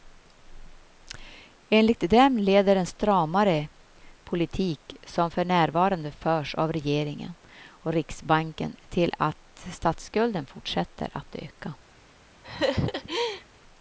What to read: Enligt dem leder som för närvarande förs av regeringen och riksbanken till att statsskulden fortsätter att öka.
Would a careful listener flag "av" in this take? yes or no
no